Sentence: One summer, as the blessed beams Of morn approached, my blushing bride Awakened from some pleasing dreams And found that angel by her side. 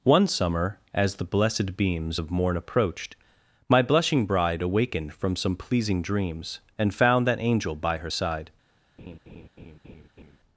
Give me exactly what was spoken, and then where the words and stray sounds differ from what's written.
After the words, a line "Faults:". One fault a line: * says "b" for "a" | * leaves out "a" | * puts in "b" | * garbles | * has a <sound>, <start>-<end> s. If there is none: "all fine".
One summer, as the blessed beams Of morn approached, my blushing bride Awakened from some pleasing dreams And found that angel by her side.
Faults:
* has a laugh, 9.0-10.4 s